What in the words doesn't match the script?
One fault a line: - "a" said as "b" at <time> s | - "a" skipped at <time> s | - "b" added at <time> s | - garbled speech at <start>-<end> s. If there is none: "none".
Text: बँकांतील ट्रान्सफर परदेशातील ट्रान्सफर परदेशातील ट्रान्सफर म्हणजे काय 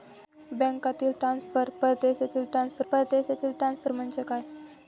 none